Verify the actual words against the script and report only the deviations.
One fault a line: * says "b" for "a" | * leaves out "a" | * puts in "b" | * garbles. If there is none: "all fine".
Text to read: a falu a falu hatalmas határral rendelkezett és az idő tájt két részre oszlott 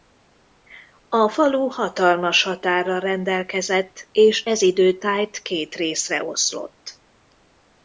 * leaves out "a falu"
* says "ez" for "az"